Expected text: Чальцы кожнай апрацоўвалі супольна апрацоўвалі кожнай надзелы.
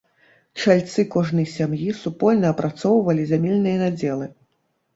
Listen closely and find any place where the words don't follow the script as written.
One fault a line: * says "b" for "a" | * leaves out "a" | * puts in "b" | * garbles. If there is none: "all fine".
* says "сям'і" for "апрацоўвалі"
* says "зямельныя" for "кожнай"